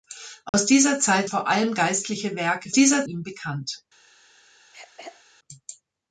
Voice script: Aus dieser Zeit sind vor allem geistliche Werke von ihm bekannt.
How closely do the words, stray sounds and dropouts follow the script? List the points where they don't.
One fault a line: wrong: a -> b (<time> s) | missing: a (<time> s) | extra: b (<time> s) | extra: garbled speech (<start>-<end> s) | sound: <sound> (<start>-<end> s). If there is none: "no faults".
sound: dropout (0.5-0.5 s)
missing: sind (1.3 s)
wrong: von -> dieser (2.7 s)
sound: throat clearing (4.7-5.2 s)